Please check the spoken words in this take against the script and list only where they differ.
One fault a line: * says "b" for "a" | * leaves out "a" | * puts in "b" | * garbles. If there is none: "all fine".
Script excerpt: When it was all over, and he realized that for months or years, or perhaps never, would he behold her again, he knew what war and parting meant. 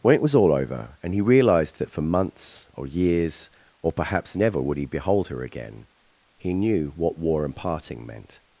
all fine